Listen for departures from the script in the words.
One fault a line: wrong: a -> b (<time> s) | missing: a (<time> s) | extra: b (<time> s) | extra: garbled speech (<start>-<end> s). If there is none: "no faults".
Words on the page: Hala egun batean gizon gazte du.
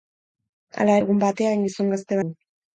no faults